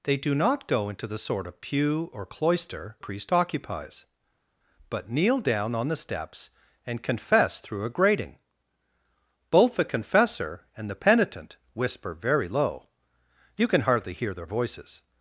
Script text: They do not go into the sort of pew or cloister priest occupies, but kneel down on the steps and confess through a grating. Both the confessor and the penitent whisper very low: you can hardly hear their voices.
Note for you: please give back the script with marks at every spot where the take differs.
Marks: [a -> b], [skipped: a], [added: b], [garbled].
They do not go into the sort of pew or cloister priest occupies, but kneel down on the steps and confess through a grating. Both the confessor and the penitent whisper very low: you can hardly hear their voices.